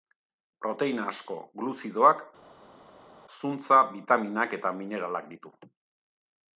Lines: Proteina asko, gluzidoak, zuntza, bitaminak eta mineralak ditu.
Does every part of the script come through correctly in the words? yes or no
yes